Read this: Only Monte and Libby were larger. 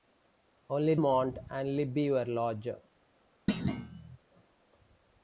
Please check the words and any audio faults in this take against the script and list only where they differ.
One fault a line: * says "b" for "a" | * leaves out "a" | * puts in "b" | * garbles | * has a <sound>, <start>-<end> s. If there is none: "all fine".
* has a thud, 3.5-4.2 s